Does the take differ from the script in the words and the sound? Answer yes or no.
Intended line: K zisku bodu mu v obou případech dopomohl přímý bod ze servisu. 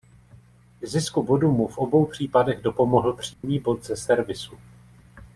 yes